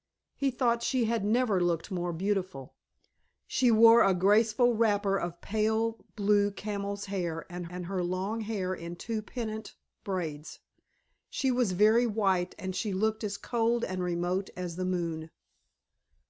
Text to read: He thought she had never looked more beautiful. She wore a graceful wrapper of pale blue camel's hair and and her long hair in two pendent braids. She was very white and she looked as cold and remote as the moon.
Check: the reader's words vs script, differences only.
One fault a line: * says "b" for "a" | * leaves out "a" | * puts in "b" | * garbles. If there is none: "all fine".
all fine